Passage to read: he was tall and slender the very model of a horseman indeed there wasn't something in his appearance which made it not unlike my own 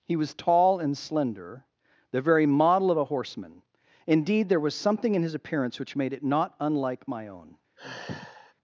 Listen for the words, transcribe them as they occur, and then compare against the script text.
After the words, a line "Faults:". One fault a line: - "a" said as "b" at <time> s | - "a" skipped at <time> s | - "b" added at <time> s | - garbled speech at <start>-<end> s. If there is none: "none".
he was tall and slender the very model of a horseman indeed there was something in his appearance which made it not unlike my own
Faults:
- "wasn't" said as "was" at 4.6 s